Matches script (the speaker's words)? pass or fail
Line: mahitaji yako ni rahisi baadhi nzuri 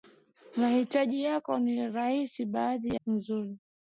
pass